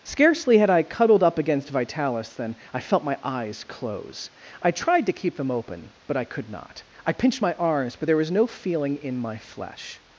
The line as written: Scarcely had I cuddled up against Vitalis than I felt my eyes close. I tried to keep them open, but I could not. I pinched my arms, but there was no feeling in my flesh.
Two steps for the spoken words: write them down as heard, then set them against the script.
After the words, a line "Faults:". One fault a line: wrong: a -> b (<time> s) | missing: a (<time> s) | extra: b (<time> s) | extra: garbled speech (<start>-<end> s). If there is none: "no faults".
Scarcely had I cuddled up against Vitalis than I felt my eyes close. I tried to keep them open, but I could not. I pinched my arms, but there was no feeling in my flesh.
Faults:
no faults